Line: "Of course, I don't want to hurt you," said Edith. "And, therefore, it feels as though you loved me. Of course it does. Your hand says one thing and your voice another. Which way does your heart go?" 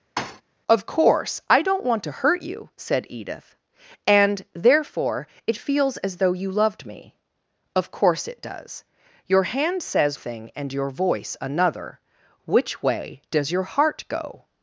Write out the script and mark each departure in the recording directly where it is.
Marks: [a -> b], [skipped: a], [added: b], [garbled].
"Of course, I don't want to hurt you," said Edith. "And, therefore, it feels as though you loved me. Of course it does. Your hand says [skipped: one] thing and your voice another. Which way does your heart go?"